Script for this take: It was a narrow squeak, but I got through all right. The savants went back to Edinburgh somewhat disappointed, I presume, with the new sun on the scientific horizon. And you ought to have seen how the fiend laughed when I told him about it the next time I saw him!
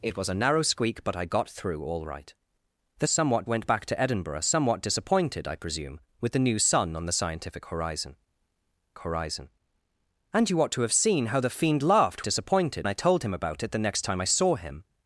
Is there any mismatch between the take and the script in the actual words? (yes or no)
yes